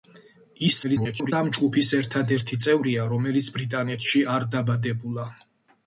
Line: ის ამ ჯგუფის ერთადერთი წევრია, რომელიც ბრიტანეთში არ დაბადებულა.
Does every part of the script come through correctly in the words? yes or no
no